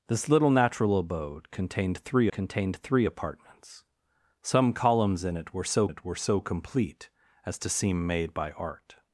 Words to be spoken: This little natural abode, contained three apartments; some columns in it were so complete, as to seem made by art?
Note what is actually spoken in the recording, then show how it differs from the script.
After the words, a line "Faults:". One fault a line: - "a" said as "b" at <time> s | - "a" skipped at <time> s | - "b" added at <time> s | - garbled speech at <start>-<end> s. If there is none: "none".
This little natural abode, contained three contained three apartments; some columns in it were so it were so complete, as to seem made by art?
Faults:
- "contained three" added at 2.3 s
- "it were so" added at 5.9 s